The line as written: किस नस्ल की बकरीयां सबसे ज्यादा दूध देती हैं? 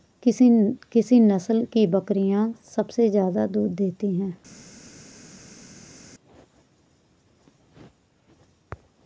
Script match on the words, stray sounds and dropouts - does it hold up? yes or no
yes